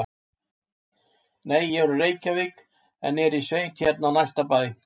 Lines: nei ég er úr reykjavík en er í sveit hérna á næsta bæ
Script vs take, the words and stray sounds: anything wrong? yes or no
no